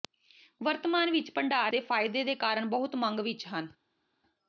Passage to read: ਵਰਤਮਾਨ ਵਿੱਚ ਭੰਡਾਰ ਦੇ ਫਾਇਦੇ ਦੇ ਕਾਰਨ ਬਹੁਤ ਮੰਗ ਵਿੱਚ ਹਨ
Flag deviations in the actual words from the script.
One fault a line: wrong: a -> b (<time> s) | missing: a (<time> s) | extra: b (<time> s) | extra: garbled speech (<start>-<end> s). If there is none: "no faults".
no faults